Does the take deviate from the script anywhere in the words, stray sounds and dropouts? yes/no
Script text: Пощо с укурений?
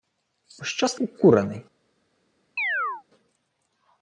yes